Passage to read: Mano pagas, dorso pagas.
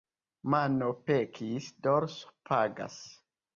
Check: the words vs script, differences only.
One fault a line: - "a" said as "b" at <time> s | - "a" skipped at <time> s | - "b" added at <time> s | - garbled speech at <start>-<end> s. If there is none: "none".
- "pagas" said as "pekis" at 1.1 s